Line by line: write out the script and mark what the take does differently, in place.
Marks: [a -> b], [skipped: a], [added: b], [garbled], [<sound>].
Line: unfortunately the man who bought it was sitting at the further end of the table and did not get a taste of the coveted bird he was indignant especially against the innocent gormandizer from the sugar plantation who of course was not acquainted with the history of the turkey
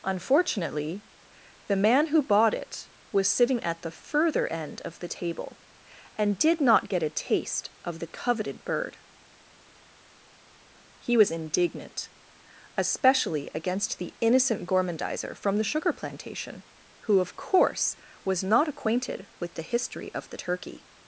unfortunately the man who bought it was sitting at the further end of the table and did not get a taste of the coveted bird he was indignant especially against the innocent gormandizer from the sugar plantation who of course was not acquainted with the history of the turkey